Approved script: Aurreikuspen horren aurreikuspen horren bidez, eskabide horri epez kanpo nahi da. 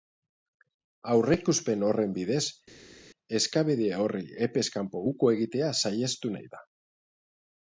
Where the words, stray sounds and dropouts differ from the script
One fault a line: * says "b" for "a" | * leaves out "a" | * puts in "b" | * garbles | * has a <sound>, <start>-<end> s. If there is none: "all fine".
* leaves out "aurreikuspen horren"
* puts in "uko egitea saihestu"